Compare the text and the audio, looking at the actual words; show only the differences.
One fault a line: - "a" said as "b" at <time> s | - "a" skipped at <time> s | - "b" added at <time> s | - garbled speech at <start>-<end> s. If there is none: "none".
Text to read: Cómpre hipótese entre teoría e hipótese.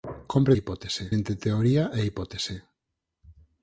none